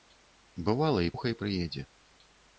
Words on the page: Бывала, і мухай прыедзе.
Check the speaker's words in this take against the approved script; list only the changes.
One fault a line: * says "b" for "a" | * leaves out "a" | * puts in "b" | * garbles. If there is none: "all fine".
all fine